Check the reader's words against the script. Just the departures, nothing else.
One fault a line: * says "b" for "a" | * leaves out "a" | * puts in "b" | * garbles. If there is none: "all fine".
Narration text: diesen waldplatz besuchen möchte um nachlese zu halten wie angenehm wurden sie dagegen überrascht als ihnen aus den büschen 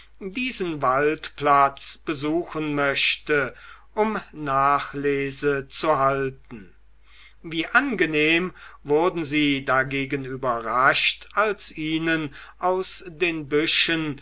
all fine